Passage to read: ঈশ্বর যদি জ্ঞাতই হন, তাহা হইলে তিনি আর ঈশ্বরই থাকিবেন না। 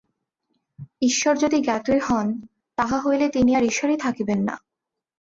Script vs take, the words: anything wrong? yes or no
no